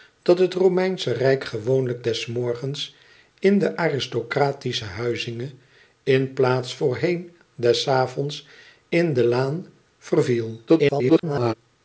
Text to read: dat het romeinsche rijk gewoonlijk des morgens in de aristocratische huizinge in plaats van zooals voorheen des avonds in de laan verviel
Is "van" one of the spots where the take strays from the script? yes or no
yes